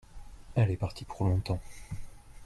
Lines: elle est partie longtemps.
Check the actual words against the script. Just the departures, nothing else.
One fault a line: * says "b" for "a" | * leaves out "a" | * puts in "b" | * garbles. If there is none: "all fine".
* puts in "pour"